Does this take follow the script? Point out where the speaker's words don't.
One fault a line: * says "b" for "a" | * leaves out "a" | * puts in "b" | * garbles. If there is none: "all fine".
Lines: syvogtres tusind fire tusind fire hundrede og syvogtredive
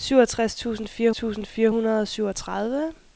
all fine